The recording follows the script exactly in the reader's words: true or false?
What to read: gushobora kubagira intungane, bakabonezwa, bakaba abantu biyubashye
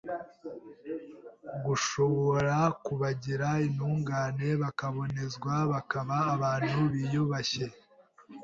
true